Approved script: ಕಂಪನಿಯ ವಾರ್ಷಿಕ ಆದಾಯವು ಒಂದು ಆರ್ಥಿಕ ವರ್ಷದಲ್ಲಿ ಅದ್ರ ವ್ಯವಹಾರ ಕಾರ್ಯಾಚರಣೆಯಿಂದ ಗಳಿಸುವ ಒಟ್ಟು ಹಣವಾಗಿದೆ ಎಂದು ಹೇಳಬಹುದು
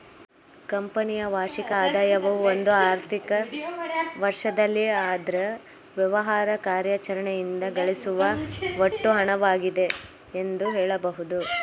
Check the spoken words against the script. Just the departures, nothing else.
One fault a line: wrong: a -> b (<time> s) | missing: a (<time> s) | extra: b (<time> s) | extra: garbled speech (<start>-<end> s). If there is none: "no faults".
no faults